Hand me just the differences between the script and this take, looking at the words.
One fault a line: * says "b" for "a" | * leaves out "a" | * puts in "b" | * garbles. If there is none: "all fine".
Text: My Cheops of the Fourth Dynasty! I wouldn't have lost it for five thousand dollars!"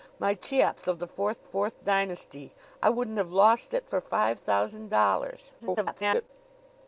* puts in "Fourth"
* garbles